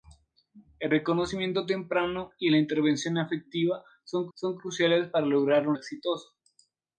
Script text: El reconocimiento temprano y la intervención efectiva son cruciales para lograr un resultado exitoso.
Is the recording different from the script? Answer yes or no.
yes